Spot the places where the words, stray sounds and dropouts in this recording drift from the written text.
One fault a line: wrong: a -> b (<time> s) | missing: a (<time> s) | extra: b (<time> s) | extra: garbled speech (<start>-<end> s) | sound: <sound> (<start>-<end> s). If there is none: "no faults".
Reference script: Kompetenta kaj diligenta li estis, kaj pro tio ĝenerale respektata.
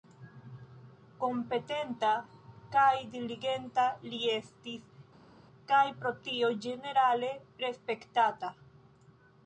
no faults